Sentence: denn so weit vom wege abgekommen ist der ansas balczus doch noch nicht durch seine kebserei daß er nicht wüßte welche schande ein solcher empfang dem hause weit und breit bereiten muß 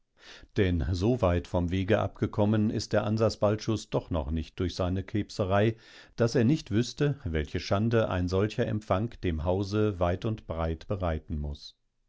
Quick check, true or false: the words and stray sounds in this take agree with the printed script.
true